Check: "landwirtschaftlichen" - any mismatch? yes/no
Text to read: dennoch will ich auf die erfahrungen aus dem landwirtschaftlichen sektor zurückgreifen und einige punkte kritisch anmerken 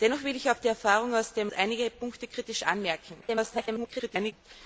yes